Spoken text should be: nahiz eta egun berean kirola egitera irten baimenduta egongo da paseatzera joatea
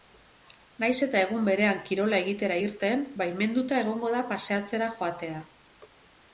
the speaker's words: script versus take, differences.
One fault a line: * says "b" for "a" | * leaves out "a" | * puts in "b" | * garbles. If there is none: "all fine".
all fine